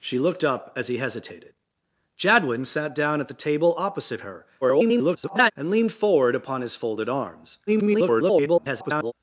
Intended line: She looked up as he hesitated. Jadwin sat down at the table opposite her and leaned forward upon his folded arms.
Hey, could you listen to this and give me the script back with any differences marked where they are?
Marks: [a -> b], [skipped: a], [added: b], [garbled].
She looked up as he hesitated. Jadwin sat down at the table opposite her [garbled] and leaned forward upon his folded arms. [garbled]